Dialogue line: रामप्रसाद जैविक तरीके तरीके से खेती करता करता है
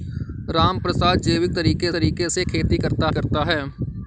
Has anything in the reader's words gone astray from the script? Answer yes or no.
no